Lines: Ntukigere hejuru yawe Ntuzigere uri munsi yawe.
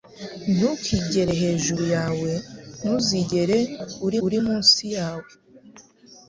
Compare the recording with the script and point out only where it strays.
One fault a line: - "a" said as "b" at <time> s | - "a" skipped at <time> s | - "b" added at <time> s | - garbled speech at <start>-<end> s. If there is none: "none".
- "uri" added at 4.2 s